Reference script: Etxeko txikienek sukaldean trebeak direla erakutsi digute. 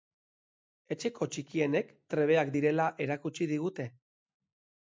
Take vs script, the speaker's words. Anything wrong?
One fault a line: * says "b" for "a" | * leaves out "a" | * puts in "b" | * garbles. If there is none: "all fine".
* leaves out "sukaldean"